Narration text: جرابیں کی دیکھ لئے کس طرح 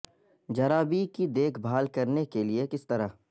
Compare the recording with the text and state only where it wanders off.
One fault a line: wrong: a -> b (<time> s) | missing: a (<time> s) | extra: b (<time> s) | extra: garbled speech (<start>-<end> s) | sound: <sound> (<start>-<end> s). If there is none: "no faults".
extra: بھال کرنے کے (1.6 s)